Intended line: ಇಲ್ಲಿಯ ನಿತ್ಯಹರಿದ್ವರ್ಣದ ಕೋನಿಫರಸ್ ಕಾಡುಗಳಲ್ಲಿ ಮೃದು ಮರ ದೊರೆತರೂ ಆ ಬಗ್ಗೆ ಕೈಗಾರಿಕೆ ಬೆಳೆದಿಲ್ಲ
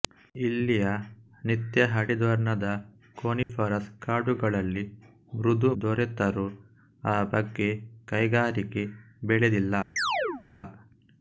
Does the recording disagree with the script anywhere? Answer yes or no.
yes